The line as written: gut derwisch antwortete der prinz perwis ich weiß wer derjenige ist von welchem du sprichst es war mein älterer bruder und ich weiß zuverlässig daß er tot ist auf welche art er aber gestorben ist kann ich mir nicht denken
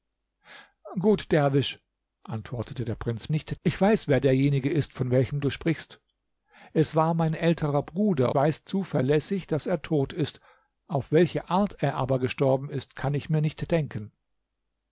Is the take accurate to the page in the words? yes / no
no